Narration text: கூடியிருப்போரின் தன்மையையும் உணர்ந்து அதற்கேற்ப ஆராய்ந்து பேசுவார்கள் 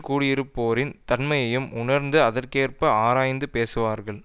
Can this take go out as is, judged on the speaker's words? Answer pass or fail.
pass